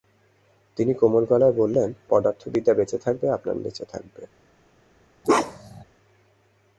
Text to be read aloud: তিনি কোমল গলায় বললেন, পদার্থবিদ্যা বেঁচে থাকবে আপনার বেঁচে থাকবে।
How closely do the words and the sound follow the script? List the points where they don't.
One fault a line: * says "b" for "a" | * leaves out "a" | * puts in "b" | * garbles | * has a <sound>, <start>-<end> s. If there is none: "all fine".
* has a bark, 5.2-5.8 s